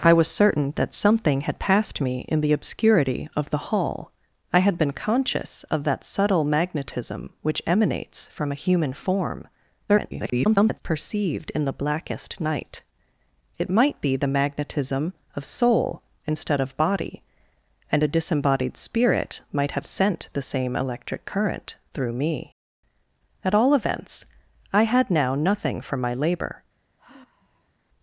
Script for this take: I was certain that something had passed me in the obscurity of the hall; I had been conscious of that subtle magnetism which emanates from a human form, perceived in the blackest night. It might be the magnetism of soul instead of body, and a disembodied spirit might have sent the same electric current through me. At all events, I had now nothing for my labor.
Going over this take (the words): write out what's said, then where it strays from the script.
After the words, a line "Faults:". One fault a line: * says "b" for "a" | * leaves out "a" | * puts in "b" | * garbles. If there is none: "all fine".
I was certain that something had passed me in the obscurity of the hall; I had been conscious of that subtle magnetism which emanates from a human form, [garbled] perceived in the blackest night. It might be the magnetism of soul instead of body, and a disembodied spirit might have sent the same electric current through me. At all events, I had now nothing for my labor.
Faults:
* garbles